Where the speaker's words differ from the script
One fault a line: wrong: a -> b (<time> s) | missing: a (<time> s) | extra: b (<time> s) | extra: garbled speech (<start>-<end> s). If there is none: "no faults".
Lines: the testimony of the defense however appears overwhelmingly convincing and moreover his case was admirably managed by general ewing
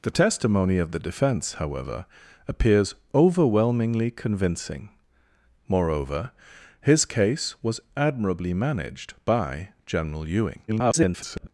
missing: and (4.9 s)
extra: garbled speech (10.7-11.5 s)